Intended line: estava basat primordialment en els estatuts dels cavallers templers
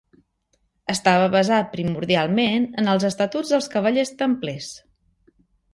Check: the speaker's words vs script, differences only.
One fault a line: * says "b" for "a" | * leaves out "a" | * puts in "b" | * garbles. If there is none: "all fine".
all fine